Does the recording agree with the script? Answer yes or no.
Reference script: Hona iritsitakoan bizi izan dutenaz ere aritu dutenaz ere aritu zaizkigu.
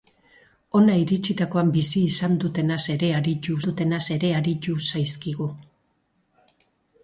yes